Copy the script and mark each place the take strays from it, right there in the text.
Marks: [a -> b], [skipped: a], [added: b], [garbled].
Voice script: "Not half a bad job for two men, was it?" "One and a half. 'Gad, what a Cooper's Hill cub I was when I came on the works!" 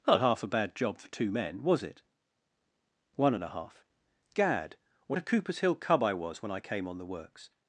"Not half a bad job for two men, was it?" "One and a half. 'Gad, what a Cooper's Hill cub I was when I came on the works!"